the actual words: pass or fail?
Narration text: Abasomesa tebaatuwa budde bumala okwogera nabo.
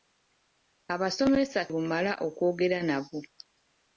fail